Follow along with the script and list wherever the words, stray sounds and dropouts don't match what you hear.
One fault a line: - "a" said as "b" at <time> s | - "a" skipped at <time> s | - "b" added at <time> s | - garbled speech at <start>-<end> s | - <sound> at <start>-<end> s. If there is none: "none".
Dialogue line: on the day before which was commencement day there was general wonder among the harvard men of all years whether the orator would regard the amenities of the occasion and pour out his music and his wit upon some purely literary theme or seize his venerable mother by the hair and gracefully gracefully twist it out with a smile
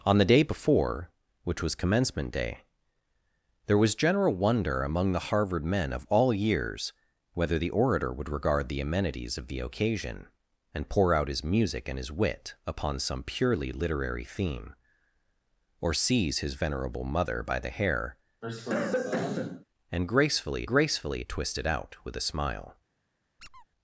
- cough at 18.4-19.6 s
- squeak at 23.4-23.7 s